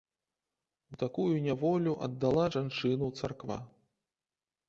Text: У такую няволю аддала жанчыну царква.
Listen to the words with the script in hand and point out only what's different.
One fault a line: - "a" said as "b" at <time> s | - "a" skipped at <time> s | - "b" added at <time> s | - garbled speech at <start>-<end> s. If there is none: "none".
none